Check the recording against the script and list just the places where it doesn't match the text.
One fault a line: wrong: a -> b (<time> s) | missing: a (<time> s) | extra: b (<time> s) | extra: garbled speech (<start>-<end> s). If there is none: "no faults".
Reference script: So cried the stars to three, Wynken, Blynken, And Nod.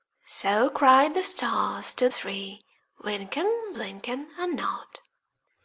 no faults